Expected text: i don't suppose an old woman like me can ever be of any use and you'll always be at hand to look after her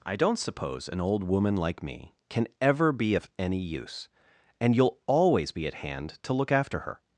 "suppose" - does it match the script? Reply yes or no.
yes